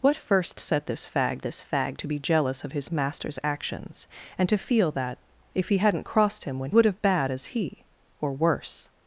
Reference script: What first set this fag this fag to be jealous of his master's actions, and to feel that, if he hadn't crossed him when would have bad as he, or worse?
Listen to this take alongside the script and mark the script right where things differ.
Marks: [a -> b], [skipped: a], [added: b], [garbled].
What first set this fag this fag to be jealous of his master's actions, and to feel that, if he hadn't crossed him when would have bad as he, or worse?